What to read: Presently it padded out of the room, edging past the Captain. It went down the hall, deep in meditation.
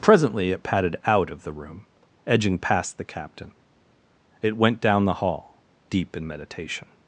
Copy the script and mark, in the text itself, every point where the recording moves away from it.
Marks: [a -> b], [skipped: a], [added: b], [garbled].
Presently it padded out of the room, edging past the Captain. It went down the hall, deep in meditation.